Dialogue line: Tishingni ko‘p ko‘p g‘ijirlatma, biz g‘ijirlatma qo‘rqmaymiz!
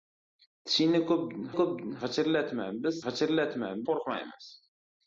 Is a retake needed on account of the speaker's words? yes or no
no